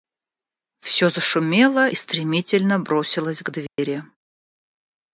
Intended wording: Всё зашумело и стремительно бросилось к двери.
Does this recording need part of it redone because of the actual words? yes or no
yes